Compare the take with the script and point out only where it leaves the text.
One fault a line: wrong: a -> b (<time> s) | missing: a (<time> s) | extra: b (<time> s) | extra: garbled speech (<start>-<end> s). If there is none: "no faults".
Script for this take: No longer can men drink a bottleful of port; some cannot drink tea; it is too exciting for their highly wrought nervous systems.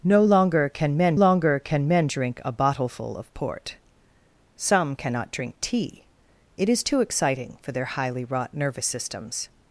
extra: longer can men (1.1 s)